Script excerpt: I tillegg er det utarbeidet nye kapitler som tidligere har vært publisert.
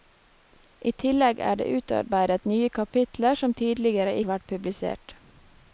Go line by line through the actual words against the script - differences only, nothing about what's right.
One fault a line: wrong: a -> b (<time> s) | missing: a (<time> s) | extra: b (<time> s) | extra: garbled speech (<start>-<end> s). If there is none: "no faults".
no faults